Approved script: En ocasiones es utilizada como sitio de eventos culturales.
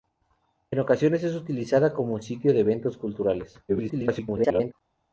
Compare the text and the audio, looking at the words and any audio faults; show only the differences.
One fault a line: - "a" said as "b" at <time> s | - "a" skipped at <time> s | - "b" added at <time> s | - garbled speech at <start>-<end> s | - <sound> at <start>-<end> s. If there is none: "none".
- garbled speech at 3.7-4.7 s